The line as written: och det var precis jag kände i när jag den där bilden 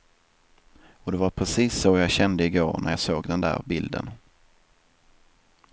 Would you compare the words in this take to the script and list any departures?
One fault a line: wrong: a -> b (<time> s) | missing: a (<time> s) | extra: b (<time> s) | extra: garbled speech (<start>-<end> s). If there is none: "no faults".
extra: så (1.8 s)
extra: går (2.5 s)
extra: såg (3.0 s)